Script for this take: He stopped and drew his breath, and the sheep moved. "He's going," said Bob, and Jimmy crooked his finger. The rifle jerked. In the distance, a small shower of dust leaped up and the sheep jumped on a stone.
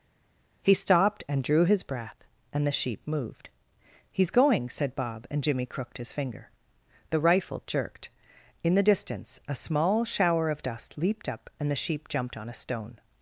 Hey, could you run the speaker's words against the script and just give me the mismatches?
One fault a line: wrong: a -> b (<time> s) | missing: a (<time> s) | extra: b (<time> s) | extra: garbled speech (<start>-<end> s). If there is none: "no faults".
no faults